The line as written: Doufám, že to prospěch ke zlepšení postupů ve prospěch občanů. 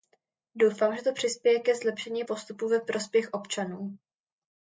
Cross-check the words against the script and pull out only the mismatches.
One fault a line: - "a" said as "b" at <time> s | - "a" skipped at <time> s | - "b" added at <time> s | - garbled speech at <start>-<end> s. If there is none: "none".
- "prospěch" said as "přispěje" at 1.1 s